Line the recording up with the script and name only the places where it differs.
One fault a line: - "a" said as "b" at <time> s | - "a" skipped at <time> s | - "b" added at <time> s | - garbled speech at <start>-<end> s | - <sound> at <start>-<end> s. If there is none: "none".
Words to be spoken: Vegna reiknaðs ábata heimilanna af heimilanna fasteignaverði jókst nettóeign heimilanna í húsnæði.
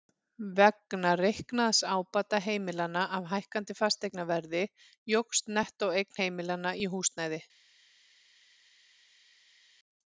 - "heimilanna" said as "hækkandi" at 3.3 s